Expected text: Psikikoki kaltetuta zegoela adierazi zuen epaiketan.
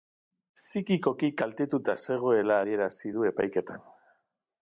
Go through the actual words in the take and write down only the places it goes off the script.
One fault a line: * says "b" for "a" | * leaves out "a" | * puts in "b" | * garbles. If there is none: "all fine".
* says "du" for "zuen"